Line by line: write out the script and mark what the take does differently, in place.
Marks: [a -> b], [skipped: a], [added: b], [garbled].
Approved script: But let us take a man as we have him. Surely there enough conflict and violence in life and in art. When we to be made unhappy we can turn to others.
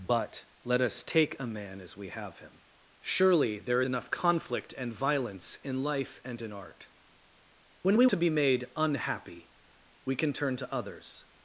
But let us take a man as we have him. Surely there enough conflict and violence in life and in art. When we to be made unhappy we can turn to others.